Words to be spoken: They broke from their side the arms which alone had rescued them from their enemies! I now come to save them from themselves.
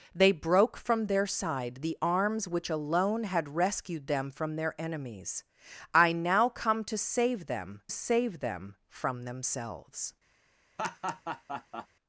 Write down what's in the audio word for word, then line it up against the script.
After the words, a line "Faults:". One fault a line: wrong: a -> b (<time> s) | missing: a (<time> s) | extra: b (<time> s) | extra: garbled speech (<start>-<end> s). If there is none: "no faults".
They broke from their side the arms which alone had rescued them from their enemies! I now come to save them save them from themselves.
Faults:
extra: save them (7.9 s)